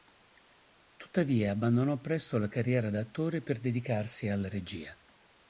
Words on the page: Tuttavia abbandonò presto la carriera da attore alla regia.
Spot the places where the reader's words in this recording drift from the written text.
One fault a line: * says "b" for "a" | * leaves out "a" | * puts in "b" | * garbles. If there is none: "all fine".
* puts in "per dedicarsi"